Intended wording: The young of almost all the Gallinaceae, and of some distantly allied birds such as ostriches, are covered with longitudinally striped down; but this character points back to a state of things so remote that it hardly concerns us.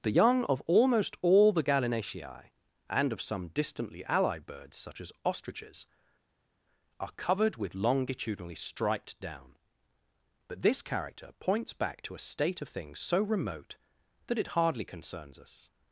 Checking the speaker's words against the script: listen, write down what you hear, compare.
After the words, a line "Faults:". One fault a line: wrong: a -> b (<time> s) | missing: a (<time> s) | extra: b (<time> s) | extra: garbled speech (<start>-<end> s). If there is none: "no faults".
The young of almost all the Gallinaceae, and of some distantly allied birds such as ostriches, are covered with longitudinally striped down; but this character points back to a state of things so remote that it hardly concerns us.
Faults:
no faults